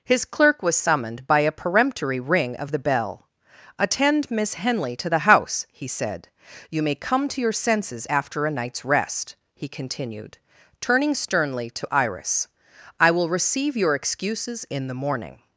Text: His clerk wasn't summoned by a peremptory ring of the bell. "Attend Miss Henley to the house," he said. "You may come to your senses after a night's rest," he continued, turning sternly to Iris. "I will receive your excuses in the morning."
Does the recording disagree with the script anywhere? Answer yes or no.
yes